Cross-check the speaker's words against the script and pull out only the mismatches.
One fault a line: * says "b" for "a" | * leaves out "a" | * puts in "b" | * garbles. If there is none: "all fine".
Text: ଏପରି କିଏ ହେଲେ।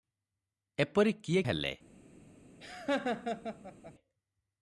all fine